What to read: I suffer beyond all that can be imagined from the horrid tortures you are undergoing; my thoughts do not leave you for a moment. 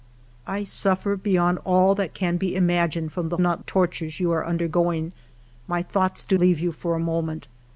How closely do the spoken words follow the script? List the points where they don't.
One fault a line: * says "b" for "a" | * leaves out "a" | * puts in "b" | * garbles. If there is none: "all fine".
* says "not" for "horrid"
* leaves out "not"